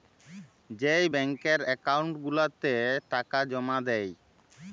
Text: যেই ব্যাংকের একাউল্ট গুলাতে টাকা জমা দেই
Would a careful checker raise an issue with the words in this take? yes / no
no